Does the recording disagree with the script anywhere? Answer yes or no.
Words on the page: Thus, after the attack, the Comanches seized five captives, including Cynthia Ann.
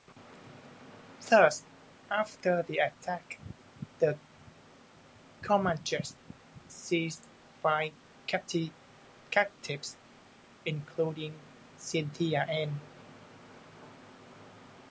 no